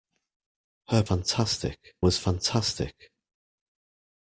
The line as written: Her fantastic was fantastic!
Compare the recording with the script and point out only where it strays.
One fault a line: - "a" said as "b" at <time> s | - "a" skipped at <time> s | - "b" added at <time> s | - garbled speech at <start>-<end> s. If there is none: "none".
none